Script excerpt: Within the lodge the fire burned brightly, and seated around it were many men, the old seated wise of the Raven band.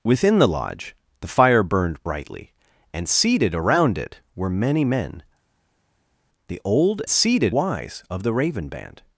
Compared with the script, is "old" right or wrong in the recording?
right